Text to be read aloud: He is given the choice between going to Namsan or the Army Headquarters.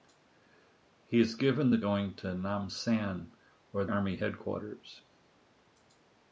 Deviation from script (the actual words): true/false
true